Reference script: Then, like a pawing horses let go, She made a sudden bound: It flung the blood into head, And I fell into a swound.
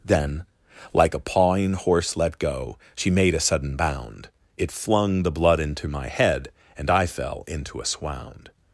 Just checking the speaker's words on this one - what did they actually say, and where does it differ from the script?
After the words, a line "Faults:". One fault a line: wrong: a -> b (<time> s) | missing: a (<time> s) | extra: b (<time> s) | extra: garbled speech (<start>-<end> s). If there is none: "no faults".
Then, like a pawing horse let go, She made a sudden bound: It flung the blood into my head, And I fell into a swound.
Faults:
wrong: horses -> horse (1.7 s)
extra: my (5.9 s)